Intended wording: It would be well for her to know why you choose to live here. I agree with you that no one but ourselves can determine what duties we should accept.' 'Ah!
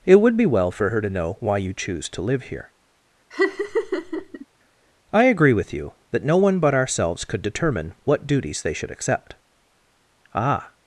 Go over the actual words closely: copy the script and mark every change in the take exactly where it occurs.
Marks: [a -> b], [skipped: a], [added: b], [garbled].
It would be well for her to know why you choose to live here. I agree with you that no one but ourselves [can -> could] determine what duties [we -> they] should accept.' 'Ah!